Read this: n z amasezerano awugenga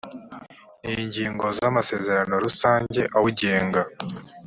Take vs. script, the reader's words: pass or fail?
fail